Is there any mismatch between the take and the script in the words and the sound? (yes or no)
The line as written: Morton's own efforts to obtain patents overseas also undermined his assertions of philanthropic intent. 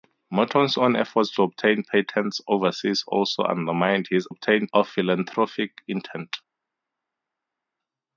yes